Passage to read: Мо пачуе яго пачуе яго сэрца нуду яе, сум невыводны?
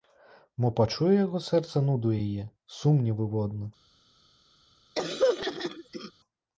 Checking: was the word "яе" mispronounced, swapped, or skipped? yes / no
no